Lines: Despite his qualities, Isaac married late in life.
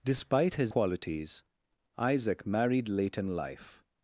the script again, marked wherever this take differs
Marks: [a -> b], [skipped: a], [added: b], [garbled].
Despite his qualities, Isaac married late in life.